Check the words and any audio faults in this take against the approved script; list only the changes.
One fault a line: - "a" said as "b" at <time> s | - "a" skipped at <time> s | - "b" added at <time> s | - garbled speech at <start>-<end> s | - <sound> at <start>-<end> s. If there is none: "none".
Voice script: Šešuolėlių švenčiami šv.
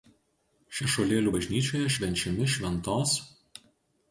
- "bažnyčioje" added at 1.3 s